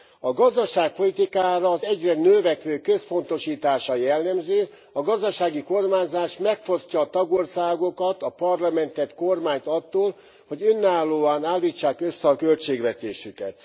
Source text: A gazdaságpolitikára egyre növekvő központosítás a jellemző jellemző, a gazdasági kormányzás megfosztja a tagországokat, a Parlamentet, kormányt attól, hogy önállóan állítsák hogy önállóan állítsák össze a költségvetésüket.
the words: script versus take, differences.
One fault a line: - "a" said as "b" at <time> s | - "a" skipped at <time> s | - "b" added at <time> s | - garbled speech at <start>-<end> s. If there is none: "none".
- "az" added at 1.7 s
- "jellemző" skipped at 4.7 s
- "hogy önállóan állítsák" skipped at 12.0 s